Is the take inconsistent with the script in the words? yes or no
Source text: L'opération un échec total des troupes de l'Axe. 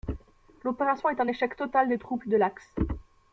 yes